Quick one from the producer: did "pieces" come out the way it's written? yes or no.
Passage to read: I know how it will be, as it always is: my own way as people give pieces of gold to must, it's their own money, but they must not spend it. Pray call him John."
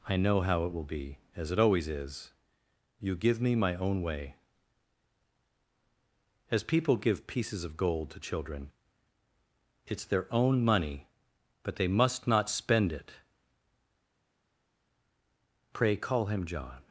yes